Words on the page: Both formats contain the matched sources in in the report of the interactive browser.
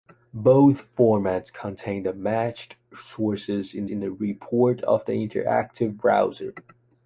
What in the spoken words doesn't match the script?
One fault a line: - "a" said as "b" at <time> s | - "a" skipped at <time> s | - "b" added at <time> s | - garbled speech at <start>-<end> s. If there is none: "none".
none